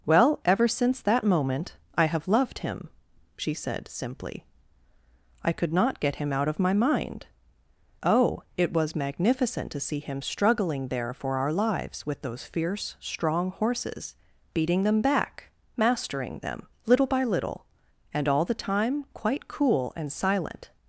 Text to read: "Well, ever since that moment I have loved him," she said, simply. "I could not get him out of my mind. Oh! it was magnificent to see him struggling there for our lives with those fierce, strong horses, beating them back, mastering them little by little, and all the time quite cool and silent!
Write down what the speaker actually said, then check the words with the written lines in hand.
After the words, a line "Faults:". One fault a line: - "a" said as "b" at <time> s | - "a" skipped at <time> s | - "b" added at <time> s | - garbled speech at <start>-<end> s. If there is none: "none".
"Well, ever since that moment I have loved him," she said, simply. "I could not get him out of my mind. Oh! it was magnificent to see him struggling there for our lives with those fierce, strong horses, beating them back, mastering them little by little, and all the time quite cool and silent!
Faults:
none